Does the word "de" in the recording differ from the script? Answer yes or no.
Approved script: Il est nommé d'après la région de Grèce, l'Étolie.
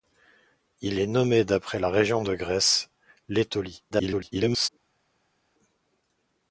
no